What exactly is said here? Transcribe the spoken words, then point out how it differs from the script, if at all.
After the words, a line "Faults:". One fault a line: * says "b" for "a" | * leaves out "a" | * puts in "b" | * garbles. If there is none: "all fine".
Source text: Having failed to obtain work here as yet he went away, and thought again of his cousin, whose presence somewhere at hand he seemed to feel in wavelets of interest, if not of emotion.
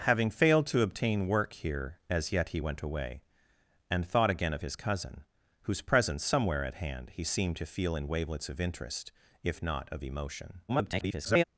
Having failed to obtain work here as yet he went away, and thought again of his cousin, whose presence somewhere at hand he seemed to feel in wavelets of interest, if not of emotion. [garbled]
Faults:
* garbles